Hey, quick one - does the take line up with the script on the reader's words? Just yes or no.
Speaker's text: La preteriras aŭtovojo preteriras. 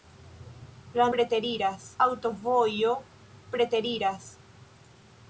yes